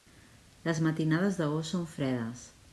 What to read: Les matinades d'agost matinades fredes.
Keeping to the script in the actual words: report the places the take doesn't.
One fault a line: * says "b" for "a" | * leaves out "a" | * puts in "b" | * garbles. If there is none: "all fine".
* says "són" for "matinades"